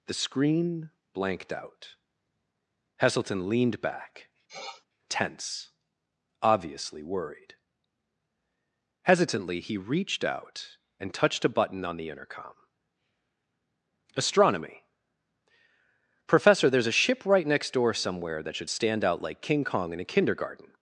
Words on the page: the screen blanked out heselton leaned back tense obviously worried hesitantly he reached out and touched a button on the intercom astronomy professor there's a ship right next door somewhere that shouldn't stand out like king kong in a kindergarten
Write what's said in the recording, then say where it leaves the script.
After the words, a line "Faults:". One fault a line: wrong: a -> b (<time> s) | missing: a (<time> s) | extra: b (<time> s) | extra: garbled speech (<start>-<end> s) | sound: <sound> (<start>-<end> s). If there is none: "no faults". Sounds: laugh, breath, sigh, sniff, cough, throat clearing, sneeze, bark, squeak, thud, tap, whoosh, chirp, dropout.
the screen blanked out heselton leaned back tense obviously worried hesitantly he reached out and touched a button on the intercom astronomy professor there's a ship right next door somewhere that should stand out like king kong in a kindergarten
Faults:
sound: sniff (4.5-4.9 s)
wrong: shouldn't -> should (18.5 s)